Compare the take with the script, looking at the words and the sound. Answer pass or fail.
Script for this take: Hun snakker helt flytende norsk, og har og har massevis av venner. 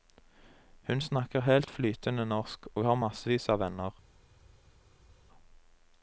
fail